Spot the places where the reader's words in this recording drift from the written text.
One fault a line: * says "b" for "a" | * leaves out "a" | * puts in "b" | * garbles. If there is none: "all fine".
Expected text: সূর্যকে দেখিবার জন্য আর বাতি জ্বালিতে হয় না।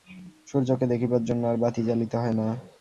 all fine